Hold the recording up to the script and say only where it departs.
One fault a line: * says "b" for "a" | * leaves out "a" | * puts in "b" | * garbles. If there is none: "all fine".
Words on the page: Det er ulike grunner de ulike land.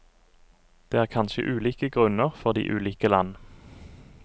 * puts in "kanskje"
* puts in "for"